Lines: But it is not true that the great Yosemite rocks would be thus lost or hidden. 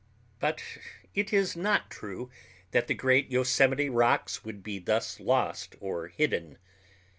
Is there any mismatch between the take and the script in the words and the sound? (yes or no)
no